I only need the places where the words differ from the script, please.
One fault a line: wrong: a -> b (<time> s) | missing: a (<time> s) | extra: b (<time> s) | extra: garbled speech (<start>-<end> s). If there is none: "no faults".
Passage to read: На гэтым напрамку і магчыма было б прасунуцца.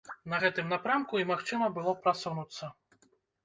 no faults